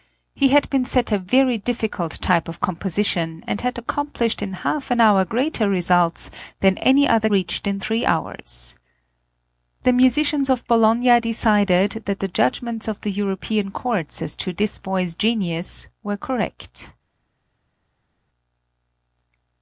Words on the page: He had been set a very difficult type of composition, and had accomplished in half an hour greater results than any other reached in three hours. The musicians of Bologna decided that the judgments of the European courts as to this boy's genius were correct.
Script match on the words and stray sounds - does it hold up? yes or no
yes